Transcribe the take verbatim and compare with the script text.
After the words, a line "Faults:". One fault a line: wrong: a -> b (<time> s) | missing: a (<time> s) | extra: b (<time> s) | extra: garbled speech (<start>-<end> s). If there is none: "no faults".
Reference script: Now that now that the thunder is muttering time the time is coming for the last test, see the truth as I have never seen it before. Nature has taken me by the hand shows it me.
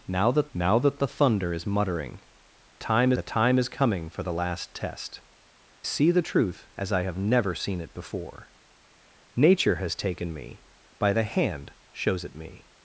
Now that now that the thunder is muttering time the time is coming for the last test, see the truth as I have never seen it before. Nature has taken me by the hand shows it me.
Faults:
no faults